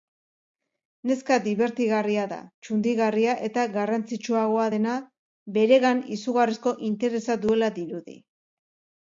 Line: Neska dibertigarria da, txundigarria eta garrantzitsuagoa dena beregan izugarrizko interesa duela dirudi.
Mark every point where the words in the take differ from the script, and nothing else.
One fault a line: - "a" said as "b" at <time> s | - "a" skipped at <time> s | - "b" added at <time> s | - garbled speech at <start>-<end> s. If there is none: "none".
none